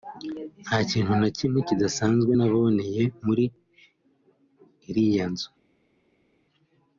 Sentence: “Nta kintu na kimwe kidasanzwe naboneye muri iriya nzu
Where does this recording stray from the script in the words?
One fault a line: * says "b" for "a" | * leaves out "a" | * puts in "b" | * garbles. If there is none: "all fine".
all fine